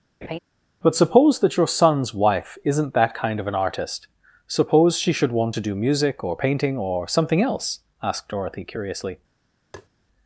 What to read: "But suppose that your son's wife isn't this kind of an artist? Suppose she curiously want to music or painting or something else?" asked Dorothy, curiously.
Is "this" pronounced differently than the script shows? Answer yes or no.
yes